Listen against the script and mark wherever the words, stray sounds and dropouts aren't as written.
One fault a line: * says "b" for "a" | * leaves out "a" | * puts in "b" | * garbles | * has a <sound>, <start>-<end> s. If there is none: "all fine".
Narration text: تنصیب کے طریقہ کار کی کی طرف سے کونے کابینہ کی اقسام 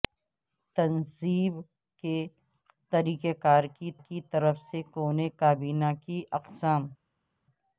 all fine